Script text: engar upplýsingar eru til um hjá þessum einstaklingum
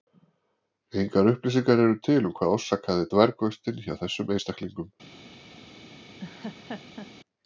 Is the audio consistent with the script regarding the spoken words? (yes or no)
no